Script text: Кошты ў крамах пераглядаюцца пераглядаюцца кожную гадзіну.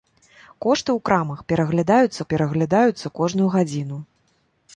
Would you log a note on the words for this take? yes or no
no